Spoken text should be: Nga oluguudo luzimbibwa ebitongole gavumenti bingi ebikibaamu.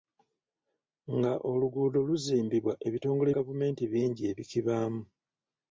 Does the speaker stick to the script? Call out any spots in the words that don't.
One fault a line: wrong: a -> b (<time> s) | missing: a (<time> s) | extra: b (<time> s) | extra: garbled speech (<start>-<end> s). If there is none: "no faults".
no faults